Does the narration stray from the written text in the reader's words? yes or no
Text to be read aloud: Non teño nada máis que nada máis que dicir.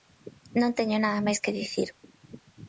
yes